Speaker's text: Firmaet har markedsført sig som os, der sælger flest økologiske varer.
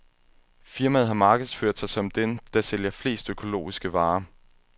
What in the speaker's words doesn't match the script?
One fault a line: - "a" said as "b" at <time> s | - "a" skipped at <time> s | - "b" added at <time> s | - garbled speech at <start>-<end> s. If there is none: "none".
- "os" said as "dem" at 2.1 s